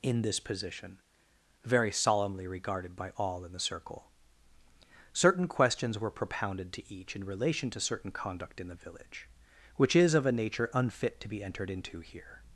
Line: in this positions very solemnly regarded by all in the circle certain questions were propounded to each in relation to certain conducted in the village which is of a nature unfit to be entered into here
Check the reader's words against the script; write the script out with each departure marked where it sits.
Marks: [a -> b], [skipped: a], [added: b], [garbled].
in this [positions -> position] very solemnly regarded by all in the circle certain questions were propounded to each in relation to certain [conducted -> conduct] in the village which is of a nature unfit to be entered into here